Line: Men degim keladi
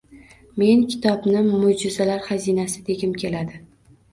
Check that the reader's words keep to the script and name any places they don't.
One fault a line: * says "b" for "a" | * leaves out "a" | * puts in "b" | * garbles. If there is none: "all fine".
* puts in "kitobni mo‘jizalar xazinasi"